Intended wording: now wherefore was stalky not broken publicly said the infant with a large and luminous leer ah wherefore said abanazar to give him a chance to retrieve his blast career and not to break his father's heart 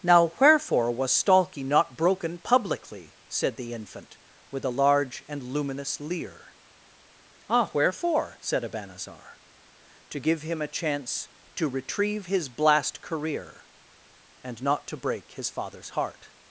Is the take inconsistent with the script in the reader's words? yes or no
no